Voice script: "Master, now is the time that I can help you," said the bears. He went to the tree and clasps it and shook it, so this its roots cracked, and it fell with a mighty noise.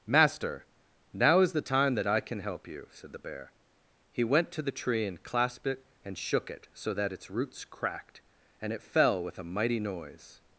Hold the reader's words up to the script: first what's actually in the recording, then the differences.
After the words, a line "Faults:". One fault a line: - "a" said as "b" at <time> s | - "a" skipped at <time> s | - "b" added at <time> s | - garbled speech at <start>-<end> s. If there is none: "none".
"Master, now is the time that I can help you," said the bear. He went to the tree and clasped it and shook it, so that its roots cracked, and it fell with a mighty noise.
Faults:
- "bears" said as "bear" at 3.2 s
- "clasps" said as "clasped" at 5.2 s
- "this" said as "that" at 6.9 s